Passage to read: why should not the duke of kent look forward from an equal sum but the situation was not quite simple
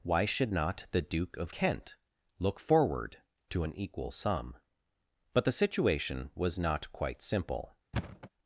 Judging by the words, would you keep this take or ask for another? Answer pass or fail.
fail